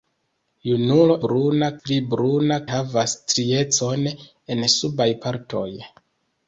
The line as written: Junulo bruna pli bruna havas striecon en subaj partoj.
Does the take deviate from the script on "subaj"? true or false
false